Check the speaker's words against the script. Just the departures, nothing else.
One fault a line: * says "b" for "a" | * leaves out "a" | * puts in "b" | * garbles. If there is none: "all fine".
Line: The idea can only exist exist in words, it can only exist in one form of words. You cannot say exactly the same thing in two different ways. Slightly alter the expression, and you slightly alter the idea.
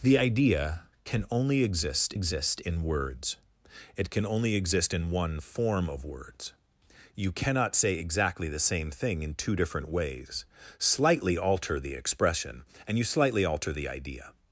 all fine